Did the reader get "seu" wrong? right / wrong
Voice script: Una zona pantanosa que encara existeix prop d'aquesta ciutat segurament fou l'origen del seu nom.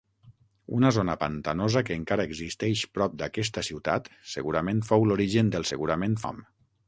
wrong